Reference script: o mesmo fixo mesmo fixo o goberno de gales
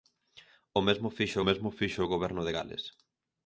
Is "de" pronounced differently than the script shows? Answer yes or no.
no